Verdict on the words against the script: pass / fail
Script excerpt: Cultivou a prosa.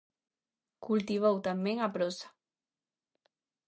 fail